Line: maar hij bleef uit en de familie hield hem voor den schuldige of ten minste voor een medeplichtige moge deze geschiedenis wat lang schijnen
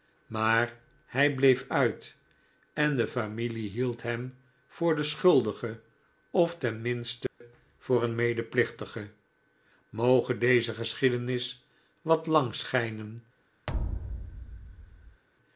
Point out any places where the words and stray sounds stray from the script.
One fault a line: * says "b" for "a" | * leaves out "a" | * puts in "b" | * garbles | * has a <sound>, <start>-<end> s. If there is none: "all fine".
* has a dropout, 7.3-7.4 s
* has a thud, 13.7-15.2 s